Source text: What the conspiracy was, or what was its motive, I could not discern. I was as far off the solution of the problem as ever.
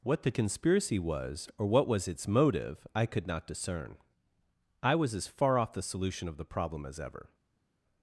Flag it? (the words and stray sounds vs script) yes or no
no